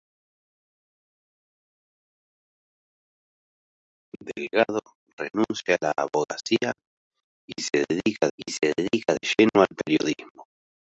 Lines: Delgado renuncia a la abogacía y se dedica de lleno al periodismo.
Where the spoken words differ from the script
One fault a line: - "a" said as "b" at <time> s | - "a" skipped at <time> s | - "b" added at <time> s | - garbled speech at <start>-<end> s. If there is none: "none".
- "y se dedica" added at 8.4 s